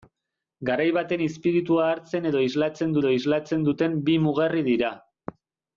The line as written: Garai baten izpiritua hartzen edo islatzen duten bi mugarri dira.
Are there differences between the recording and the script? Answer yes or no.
yes